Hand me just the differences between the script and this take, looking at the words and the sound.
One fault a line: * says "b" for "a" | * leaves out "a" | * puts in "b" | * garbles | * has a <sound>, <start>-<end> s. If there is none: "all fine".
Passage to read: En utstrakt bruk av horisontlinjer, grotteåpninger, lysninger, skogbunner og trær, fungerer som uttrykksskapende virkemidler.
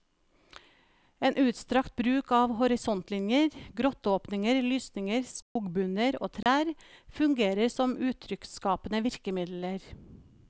* has a dropout, 5.4-5.6 s
* has a dropout, 6.4-6.5 s